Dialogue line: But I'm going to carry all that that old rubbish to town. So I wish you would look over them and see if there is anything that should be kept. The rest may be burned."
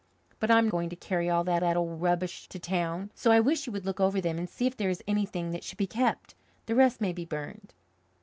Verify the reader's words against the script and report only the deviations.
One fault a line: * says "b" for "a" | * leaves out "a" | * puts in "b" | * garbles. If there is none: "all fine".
all fine